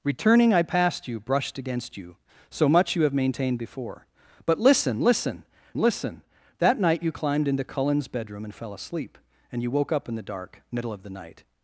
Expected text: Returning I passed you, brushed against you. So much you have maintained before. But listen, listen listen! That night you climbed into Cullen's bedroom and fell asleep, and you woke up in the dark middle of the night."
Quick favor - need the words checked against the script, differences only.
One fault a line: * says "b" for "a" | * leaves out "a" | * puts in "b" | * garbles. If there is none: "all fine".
all fine